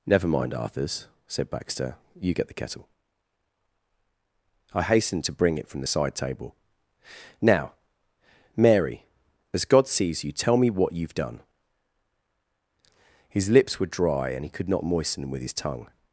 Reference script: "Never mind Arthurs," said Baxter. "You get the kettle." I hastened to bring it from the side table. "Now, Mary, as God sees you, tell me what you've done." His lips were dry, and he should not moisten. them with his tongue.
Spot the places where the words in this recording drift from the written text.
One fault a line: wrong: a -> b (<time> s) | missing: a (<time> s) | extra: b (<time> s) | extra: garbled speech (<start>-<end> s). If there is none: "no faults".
wrong: should -> could (14.5 s)